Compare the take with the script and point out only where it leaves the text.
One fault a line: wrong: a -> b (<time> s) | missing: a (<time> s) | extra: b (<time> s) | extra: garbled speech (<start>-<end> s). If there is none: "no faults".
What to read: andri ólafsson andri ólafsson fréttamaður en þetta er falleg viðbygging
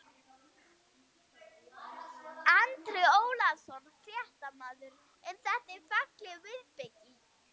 missing: andri ólafsson (3.9 s)